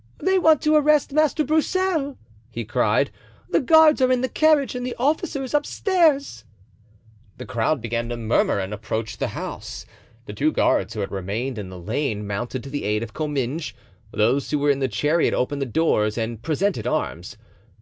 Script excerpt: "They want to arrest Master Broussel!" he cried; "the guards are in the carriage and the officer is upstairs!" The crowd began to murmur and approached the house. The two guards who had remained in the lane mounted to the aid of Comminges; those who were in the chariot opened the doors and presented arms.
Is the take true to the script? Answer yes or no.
yes